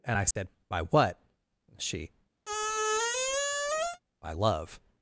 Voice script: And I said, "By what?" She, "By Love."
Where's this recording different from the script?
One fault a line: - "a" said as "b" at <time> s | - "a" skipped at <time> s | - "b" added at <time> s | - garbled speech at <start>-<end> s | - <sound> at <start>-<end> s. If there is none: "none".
- dropout at 0.3-0.4 s
- squeak at 2.4-4.0 s